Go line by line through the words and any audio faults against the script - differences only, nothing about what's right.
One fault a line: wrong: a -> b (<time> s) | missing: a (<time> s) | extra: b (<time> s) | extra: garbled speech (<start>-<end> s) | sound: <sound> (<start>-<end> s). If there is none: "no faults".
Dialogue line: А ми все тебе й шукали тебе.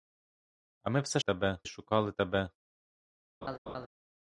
sound: laugh (3.4-3.9 s)